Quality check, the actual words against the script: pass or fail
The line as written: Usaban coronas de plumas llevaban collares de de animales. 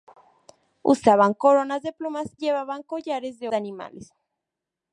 pass